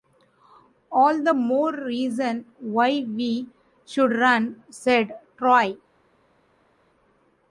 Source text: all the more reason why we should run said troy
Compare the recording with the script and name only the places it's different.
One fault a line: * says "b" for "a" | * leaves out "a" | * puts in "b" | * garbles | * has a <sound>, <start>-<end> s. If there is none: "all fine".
all fine